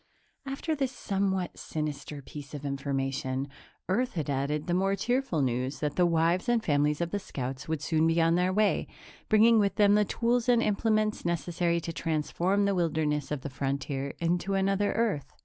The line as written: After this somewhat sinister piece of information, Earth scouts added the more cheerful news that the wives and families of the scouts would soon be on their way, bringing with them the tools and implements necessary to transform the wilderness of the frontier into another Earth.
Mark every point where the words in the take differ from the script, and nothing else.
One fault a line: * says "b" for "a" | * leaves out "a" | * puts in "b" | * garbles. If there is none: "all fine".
* says "had" for "scouts"